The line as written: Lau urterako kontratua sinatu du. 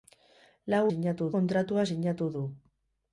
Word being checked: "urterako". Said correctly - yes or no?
no